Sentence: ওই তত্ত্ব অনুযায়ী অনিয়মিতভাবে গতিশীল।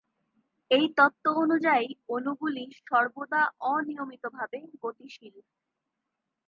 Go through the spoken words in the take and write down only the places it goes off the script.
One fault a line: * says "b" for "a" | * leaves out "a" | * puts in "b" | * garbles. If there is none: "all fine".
* says "এই" for "ওই"
* puts in "অণুগুলি সর্বদা"